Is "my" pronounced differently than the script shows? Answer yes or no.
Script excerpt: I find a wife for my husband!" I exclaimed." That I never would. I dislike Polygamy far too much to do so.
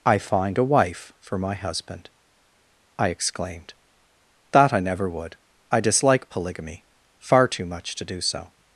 no